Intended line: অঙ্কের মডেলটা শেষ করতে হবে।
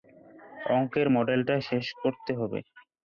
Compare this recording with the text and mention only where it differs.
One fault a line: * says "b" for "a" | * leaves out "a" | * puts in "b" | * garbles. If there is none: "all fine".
all fine